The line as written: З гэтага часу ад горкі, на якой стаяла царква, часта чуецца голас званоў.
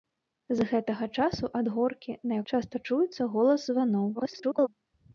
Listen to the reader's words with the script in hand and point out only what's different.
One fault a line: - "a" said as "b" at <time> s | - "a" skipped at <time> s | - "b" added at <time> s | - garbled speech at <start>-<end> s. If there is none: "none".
- "якой стаяла царква" skipped at 2.4 s
- garbled speech at 4.1-4.7 s